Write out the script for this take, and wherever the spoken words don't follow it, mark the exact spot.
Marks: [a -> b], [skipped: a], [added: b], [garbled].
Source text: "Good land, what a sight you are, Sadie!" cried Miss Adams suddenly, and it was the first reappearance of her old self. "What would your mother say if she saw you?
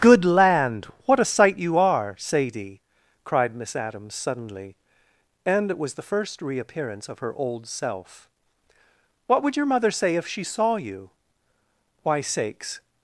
"Good land, what a sight you are, Sadie!" cried Miss Adams suddenly, and it was the first reappearance of her old self. "What would your mother say if she saw you? [added: Why sakes]